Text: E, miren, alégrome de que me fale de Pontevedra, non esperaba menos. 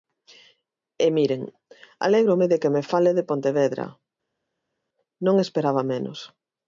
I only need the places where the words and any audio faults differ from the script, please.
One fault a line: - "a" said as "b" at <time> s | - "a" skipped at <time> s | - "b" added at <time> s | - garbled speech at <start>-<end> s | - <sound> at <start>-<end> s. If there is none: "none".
none